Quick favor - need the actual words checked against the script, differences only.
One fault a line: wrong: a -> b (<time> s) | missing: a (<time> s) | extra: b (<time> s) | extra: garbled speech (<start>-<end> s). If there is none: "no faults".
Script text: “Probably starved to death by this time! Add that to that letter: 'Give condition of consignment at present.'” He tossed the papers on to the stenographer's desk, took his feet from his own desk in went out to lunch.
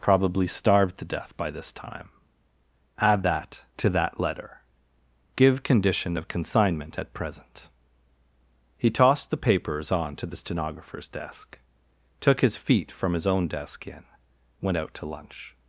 no faults